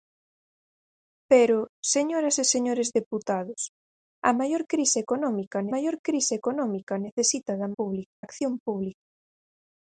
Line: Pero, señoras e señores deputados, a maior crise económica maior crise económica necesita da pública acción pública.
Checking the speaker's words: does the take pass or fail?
pass